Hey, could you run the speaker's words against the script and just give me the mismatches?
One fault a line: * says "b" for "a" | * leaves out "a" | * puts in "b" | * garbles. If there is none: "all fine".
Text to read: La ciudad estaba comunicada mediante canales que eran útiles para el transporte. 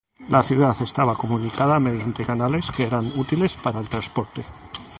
all fine